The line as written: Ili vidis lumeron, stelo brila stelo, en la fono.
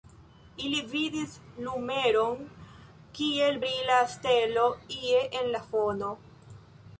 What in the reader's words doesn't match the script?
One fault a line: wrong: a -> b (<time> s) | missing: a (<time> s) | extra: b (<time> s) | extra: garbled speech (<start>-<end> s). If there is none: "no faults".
wrong: stelo -> kiel (3.2 s)
extra: ie (5.0 s)